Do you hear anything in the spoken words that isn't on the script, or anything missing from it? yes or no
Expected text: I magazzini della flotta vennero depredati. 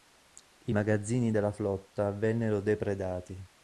no